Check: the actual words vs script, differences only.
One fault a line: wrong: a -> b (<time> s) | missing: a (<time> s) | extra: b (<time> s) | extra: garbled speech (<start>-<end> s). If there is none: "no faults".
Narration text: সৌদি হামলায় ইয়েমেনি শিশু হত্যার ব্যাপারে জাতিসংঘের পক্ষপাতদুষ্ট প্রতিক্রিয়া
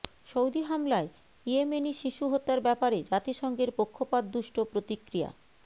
no faults